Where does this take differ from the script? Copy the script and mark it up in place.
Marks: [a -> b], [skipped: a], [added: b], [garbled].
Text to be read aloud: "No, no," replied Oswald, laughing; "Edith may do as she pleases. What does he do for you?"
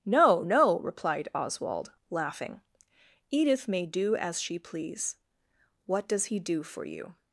"No, no," replied Oswald, laughing; "Edith may do as she [pleases. -> please] What does he do for you?"